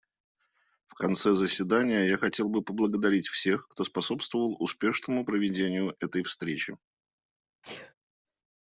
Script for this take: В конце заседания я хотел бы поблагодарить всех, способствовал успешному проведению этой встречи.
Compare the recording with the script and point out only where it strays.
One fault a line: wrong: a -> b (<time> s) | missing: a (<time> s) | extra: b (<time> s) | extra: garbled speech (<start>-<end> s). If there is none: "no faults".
extra: кто (3.7 s)